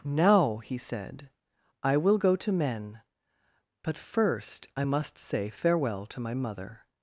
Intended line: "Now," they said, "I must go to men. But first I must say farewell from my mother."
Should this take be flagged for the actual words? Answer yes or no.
yes